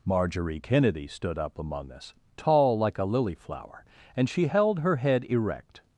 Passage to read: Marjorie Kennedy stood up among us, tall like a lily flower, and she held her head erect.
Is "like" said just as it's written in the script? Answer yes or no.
yes